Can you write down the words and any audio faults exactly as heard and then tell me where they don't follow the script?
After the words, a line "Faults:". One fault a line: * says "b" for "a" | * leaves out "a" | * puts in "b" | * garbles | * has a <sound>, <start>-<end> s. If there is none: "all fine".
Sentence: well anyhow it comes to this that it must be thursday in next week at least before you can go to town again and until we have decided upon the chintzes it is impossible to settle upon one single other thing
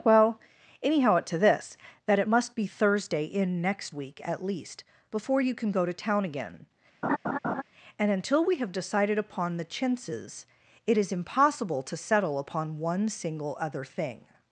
well anyhow it to this that it must be thursday in next week at least before you can go to town again and until we have decided upon the chintzes it is impossible to settle upon one single other thing
Faults:
* leaves out "comes"
* has a laugh, 7.0-7.6 s